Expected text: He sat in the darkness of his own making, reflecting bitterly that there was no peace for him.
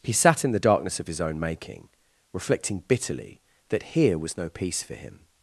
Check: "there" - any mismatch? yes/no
yes